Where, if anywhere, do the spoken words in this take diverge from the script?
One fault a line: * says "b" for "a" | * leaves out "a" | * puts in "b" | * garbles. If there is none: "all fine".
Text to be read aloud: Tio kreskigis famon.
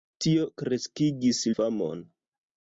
all fine